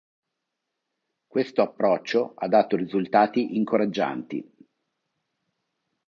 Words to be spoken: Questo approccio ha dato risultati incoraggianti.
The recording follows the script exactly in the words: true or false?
true